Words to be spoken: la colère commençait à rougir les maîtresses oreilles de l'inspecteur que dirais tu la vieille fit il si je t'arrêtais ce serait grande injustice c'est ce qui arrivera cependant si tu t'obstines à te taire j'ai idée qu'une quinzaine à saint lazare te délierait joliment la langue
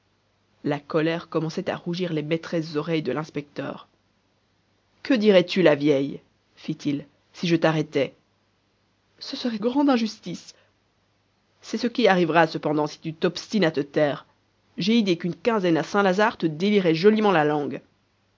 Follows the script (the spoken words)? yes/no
yes